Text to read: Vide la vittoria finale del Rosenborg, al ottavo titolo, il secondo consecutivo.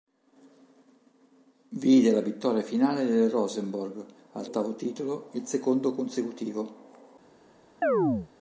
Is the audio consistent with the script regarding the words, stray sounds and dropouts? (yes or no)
no